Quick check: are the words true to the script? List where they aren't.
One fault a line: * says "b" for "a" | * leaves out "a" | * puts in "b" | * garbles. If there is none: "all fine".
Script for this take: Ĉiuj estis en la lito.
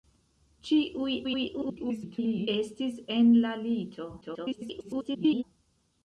* garbles
* garbles